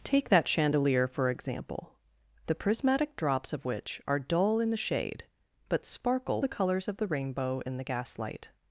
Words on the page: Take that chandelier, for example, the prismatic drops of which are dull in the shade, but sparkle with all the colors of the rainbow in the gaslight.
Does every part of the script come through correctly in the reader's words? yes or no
no